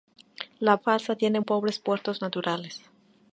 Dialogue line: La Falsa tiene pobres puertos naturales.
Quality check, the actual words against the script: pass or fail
pass